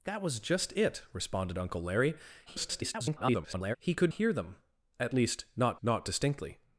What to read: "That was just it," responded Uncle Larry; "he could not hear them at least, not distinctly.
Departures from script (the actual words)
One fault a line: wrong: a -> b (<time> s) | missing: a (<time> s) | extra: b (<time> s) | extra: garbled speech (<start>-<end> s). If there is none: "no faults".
extra: garbled speech (2.5-3.8 s)
missing: not (4.1 s)
extra: not (5.8 s)